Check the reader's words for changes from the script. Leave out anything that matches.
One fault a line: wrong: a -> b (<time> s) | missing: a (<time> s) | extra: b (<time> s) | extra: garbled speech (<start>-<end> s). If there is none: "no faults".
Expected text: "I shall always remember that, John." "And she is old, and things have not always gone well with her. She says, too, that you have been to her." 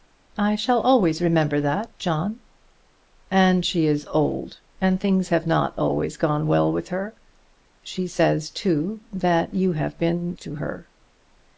no faults